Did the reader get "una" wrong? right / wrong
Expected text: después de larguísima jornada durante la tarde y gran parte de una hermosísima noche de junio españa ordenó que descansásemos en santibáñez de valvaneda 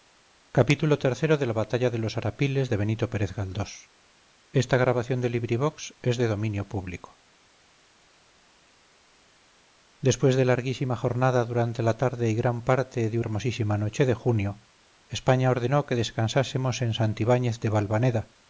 wrong